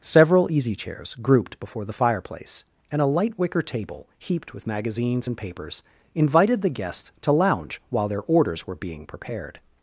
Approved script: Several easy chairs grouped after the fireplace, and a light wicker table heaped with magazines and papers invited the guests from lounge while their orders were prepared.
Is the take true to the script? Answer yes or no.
no